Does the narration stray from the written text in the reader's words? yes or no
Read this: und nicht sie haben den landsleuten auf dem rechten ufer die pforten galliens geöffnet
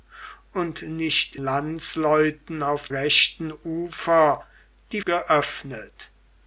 yes